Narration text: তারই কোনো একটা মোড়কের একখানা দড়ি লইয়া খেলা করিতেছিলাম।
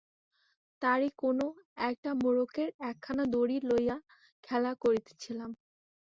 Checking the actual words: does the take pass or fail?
pass